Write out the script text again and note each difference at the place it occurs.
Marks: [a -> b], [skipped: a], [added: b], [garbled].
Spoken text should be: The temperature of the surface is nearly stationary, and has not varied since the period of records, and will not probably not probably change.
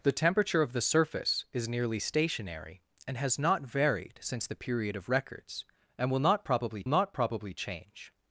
The temperature of the surface is nearly stationary, and has not varied since the period of records, and will not probably not probably change.